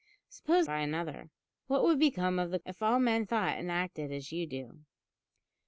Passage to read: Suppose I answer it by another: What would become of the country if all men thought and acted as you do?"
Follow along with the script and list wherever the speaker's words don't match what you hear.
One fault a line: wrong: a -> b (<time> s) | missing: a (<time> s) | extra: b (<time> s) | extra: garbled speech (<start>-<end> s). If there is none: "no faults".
missing: I answer it (0.7 s)
missing: country (2.6 s)